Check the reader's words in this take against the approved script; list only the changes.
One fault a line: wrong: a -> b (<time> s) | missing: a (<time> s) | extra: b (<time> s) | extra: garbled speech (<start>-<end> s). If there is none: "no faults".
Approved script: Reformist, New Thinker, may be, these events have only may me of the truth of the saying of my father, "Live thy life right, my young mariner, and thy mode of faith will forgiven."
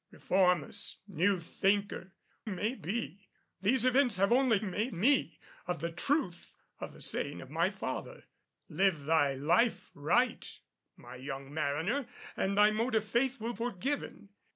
no faults